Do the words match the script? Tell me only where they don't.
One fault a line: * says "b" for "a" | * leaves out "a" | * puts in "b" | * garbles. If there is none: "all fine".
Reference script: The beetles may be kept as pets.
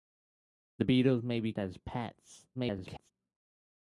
* leaves out "kept"
* garbles